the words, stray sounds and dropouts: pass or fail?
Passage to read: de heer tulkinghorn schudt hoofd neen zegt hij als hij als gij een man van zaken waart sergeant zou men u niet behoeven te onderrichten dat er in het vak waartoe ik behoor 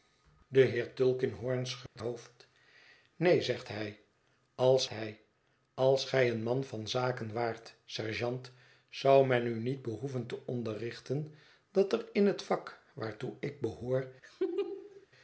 fail